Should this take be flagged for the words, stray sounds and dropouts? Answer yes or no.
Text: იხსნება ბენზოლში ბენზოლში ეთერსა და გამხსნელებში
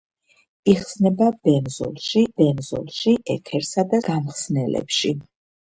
no